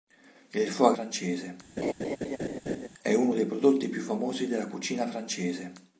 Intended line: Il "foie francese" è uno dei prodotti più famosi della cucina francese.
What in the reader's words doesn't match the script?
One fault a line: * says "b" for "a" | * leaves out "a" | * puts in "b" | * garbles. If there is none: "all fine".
all fine